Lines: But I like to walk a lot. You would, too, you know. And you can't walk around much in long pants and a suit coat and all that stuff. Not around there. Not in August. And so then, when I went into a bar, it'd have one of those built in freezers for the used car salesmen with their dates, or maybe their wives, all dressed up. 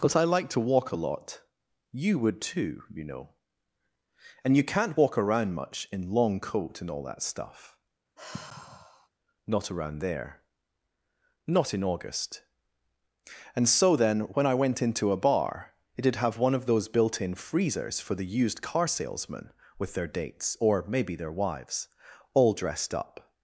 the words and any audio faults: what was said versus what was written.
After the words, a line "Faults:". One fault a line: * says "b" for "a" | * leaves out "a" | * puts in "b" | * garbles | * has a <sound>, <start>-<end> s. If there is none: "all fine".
But I like to walk a lot. You would, too, you know. And you can't walk around much in long coat and all that stuff. Not around there. Not in August. And so then, when I went into a bar, it'd have one of those built in freezers for the used car salesmen with their dates, or maybe their wives, all dressed up.
Faults:
* leaves out "pants and a suit"
* has a sigh, 8.2-9.1 s